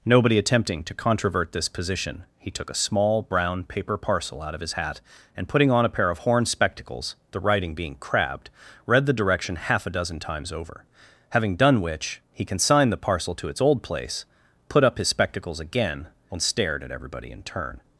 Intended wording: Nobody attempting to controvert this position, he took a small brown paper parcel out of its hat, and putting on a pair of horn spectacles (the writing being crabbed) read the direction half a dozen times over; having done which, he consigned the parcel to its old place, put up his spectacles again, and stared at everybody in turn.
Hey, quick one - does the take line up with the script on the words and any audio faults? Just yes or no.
no